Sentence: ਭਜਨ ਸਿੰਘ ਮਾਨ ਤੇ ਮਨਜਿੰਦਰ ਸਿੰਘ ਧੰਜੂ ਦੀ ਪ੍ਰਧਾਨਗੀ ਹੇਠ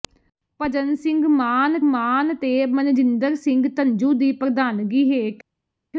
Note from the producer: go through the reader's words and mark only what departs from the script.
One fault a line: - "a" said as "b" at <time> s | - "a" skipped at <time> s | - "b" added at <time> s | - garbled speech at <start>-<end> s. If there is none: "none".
- "ਮਾਨ" added at 1.8 s